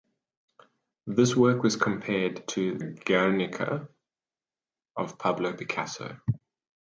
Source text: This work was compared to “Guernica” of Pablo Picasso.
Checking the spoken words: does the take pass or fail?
pass